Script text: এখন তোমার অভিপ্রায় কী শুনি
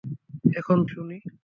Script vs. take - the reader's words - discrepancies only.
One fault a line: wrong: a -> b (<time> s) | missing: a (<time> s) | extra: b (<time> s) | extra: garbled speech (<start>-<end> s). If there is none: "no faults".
missing: তোমার অভিপ্রায় কী (0.8 s)